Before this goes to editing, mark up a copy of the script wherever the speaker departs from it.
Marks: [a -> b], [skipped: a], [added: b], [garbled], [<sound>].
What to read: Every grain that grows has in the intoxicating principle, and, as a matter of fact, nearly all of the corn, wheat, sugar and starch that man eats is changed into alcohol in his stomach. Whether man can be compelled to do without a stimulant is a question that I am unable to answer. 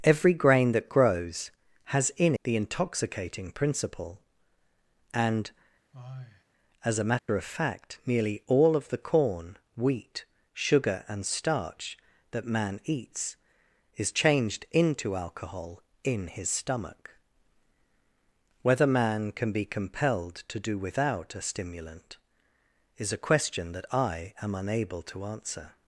Every grain that grows has in the intoxicating principle, and, [sigh] as a matter [dropout] of fact, nearly all of the corn, wheat, sugar and starch that man eats is changed into alcohol in his stomach. Whether man can be compelled to do without a stimulant is a question that I am unable to answer.